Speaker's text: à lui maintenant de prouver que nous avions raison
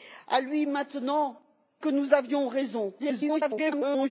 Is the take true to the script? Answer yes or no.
no